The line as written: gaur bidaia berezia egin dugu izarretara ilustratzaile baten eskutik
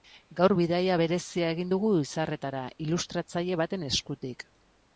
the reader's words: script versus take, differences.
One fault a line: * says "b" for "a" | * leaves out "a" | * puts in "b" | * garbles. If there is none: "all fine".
all fine